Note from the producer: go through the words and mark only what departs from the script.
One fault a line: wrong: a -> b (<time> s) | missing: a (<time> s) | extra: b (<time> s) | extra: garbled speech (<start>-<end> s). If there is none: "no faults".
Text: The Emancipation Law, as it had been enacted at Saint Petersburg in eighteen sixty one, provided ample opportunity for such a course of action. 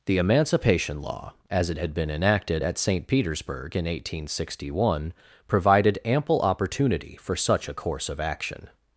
no faults